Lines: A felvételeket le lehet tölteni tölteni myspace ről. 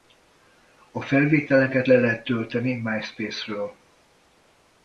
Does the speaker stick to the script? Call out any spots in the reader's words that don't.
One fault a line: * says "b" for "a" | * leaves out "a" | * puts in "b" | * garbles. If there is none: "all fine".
* leaves out "tölteni"